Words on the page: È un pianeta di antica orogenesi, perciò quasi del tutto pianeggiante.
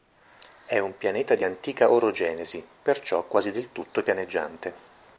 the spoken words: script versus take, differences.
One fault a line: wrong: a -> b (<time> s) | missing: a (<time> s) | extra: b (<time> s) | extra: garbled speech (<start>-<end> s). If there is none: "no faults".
no faults